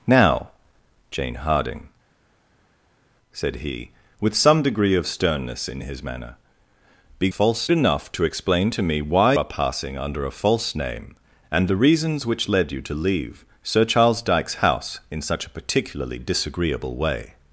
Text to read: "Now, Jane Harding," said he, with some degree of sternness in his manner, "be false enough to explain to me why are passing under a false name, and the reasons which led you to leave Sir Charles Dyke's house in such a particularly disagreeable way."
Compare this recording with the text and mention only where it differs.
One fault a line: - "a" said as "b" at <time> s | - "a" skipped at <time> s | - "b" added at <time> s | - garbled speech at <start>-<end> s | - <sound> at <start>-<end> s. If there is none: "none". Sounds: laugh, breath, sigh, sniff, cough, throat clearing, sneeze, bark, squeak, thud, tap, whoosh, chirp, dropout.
none